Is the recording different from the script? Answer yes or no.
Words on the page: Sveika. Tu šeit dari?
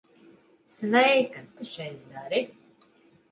no